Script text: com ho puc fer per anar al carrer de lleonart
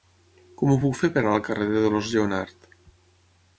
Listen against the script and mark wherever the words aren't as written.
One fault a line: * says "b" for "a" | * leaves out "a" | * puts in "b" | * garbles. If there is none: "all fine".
* puts in "dolors"